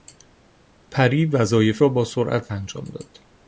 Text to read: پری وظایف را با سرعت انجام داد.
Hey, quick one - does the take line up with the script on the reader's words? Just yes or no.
yes